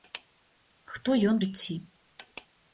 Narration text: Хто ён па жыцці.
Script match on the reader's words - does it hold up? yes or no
no